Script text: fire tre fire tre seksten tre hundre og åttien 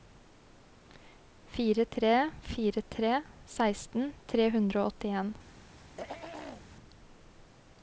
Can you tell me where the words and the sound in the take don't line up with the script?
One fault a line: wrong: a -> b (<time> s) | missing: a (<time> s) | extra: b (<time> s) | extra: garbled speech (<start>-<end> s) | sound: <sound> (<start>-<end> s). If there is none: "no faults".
sound: throat clearing (5.8-6.7 s)